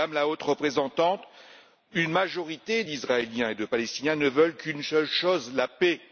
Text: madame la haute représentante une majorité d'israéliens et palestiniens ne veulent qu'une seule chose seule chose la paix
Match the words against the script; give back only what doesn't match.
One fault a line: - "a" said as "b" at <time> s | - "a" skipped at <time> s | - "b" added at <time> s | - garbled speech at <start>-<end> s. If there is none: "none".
- "de" added at 3.5 s
- "seule chose" skipped at 5.5 s